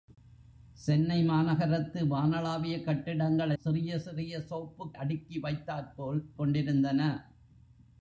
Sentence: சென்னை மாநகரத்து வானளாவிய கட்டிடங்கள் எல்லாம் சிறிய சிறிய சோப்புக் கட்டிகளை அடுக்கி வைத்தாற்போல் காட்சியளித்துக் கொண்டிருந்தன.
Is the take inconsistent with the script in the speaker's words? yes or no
yes